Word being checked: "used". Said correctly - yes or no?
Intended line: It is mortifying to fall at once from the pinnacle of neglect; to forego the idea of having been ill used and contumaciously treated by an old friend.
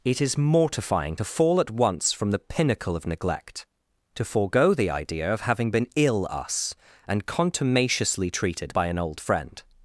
no